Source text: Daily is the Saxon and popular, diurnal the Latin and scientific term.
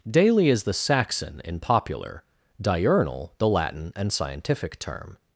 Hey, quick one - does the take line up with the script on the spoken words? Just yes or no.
no